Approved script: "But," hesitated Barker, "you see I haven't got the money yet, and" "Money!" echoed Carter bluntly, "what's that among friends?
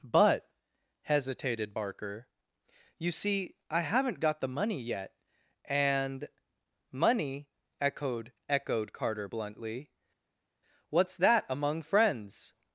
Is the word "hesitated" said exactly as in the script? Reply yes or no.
yes